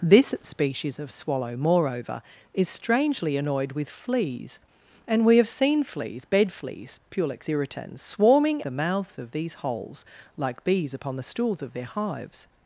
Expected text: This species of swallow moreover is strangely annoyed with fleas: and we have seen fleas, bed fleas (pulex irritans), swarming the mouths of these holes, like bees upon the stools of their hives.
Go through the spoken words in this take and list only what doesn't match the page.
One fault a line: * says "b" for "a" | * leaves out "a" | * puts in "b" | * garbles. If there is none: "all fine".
all fine